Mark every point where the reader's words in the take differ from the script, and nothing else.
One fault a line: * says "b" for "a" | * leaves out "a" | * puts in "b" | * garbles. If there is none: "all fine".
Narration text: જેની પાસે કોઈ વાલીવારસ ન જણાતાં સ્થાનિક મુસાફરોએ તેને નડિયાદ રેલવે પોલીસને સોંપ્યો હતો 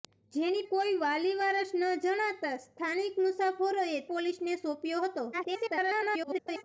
* leaves out "પાસે"
* leaves out "તેને નડિયાદ રેલવે"
* garbles